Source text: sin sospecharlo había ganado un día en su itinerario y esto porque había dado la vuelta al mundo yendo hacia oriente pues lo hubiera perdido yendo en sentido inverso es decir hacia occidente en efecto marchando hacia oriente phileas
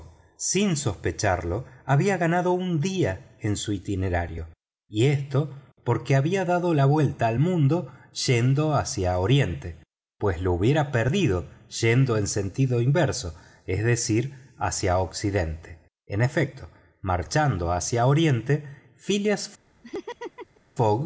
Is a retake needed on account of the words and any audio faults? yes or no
yes